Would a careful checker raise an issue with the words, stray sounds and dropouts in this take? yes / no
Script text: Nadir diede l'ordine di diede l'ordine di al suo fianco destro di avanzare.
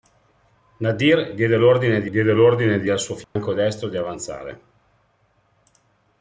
yes